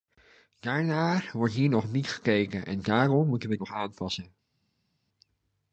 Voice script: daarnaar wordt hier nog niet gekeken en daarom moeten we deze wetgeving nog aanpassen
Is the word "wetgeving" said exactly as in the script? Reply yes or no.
no